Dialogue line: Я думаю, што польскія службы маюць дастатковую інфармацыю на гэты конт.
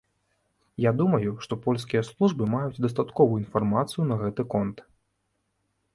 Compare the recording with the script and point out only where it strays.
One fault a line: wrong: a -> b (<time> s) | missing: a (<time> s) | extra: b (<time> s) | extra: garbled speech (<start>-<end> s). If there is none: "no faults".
no faults